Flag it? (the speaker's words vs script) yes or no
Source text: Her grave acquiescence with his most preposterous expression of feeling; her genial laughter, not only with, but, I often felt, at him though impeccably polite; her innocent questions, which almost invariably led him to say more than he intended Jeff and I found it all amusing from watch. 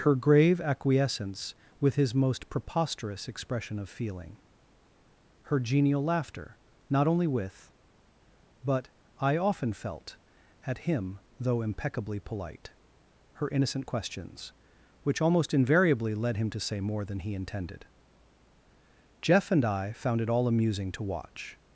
yes